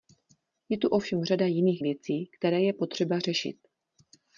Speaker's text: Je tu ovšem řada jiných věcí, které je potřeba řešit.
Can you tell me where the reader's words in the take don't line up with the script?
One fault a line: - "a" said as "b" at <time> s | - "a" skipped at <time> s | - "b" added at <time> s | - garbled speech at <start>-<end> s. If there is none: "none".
none